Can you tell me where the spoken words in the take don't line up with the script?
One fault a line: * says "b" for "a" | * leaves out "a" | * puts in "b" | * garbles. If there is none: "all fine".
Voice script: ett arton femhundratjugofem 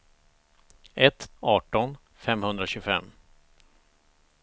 all fine